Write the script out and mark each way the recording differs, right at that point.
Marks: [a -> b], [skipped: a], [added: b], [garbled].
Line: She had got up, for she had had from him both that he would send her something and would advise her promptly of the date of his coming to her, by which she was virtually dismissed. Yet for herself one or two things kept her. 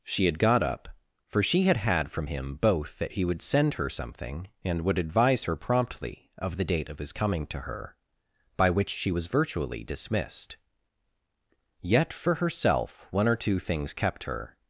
She had got up, for she had had from him both that he would send her something and would advise her promptly of the date of his coming to her, by which she was virtually dismissed. Yet for herself one or two things kept her.